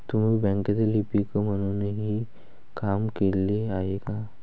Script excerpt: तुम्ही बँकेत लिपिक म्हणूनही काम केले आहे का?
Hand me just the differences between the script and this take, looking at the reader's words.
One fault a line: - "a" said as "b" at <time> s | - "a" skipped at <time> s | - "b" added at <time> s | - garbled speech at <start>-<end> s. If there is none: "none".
none